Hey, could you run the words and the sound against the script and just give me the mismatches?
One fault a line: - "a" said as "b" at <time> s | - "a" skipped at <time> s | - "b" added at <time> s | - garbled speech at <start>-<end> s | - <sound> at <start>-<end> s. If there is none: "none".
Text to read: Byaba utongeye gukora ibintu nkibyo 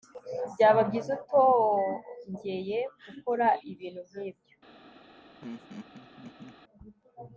- "byiza" added at 0.9 s
- laugh at 5.4-6.6 s